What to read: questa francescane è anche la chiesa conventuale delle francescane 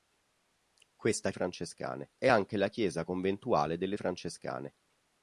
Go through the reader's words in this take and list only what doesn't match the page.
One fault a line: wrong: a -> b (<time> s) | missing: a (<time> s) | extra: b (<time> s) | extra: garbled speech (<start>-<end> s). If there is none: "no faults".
no faults